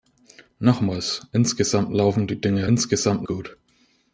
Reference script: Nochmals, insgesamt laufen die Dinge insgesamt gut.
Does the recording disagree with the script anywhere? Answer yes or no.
no